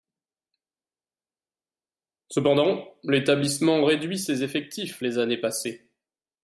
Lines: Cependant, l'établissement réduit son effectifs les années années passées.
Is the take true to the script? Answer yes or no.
no